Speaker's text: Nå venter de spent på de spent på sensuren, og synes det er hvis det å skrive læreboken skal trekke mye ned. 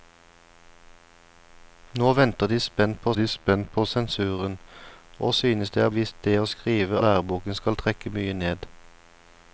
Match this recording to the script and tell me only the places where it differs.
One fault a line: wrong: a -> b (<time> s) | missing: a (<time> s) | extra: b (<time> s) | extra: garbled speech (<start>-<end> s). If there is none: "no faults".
no faults